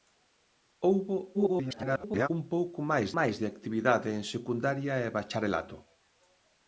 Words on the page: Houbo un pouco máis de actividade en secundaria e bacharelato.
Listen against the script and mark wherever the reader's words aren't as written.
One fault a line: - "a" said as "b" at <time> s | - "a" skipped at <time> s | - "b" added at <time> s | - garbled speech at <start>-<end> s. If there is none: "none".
- garbled speech at 1.3-2.3 s
- "máis" added at 3.2 s